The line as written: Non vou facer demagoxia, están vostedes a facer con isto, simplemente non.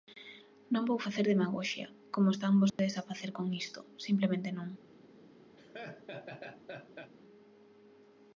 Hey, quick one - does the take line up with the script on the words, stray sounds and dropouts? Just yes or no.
no